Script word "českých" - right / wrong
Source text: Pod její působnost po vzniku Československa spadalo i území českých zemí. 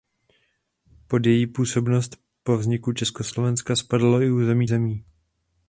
wrong